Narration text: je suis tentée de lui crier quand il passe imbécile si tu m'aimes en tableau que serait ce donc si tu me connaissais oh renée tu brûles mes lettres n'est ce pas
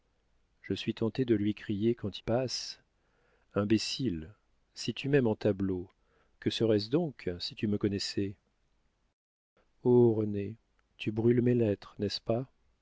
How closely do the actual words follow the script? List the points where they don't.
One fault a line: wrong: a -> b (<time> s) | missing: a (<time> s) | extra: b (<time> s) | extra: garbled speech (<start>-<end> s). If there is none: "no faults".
missing: il (2.2 s)